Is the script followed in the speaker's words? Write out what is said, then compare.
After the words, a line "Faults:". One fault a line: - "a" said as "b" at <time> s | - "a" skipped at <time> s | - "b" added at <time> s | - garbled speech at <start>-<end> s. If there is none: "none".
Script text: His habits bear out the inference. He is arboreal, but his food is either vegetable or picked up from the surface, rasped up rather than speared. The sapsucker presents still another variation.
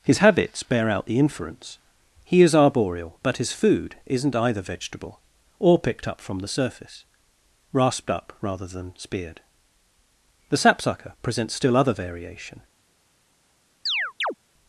His habits bear out the inference. He is arboreal, but his food isn't either vegetable or picked up from the surface, rasped up rather than speared. The sapsucker presents still other variation.
Faults:
- "is" said as "isn't" at 4.0 s
- "another" said as "other" at 11.7 s